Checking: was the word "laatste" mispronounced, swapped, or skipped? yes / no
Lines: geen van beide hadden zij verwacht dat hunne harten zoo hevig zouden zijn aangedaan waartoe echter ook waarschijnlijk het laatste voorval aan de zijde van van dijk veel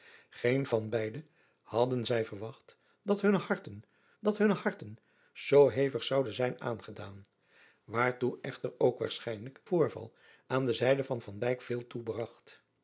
yes